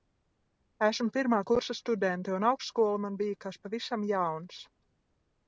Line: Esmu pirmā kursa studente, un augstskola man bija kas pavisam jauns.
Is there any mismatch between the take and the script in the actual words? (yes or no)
no